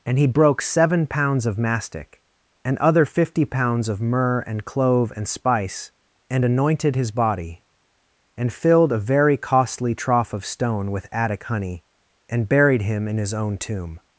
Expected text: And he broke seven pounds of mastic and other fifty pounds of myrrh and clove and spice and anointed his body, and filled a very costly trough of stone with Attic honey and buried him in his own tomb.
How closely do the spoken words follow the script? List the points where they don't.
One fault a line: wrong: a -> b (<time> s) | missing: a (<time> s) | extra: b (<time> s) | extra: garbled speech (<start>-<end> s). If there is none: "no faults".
no faults